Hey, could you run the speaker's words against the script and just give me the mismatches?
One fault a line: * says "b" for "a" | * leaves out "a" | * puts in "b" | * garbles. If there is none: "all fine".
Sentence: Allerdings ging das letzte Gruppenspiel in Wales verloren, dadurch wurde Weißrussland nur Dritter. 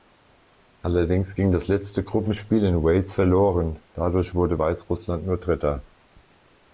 all fine